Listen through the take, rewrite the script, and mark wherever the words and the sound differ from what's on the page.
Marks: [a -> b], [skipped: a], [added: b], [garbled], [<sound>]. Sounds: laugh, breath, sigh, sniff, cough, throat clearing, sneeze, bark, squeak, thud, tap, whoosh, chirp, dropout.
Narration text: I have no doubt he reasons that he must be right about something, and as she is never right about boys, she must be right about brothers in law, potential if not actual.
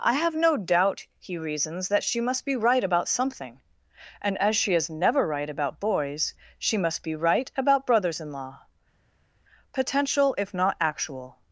I have no doubt he reasons that [he -> she] must be right about something, and as she is never right about boys, she must be right about brothers in law, potential if not actual.